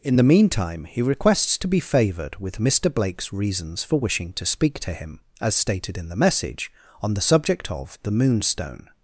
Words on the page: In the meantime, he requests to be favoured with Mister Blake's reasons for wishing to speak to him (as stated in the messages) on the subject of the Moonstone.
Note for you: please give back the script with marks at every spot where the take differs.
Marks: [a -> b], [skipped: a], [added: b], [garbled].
In the meantime, he requests to be favoured with Mister Blake's reasons for wishing to speak to him (as stated in the [messages) -> message] on the subject of the Moonstone.